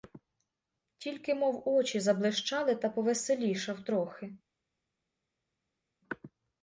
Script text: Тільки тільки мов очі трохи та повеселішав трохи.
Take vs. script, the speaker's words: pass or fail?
fail